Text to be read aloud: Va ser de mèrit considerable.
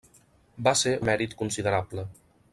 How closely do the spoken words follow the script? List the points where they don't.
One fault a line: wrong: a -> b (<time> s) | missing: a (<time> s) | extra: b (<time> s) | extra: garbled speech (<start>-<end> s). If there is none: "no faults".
no faults